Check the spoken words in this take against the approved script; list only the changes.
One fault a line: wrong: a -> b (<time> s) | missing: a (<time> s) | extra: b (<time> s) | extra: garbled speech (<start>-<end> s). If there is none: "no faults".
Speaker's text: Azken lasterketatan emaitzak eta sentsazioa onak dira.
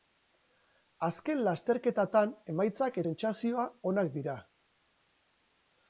missing: eta (3.0 s)